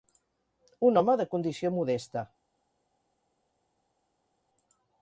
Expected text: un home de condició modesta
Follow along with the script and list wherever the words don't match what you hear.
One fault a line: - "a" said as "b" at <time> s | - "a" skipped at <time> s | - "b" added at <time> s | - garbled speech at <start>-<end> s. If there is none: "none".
none